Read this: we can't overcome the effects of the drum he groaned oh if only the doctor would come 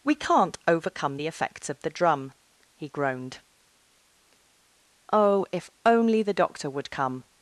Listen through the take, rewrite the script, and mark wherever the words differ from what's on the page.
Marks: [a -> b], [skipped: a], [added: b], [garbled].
we can't overcome the effects of the drum he groaned oh if only the doctor would come